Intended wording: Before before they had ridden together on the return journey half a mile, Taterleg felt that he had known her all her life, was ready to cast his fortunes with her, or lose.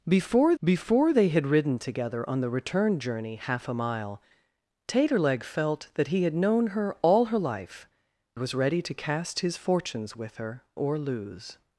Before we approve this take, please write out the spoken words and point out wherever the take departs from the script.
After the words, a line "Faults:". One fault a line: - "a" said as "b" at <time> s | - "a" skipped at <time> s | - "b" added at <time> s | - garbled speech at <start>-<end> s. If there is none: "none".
Before before they had ridden together on the return journey half a mile, Taterleg felt that he had known her all her life, was ready to cast his fortunes with her, or lose.
Faults:
none